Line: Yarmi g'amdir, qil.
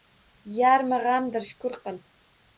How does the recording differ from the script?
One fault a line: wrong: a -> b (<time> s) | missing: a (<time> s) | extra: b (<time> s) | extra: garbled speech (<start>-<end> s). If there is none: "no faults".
extra: shukr (1.5 s)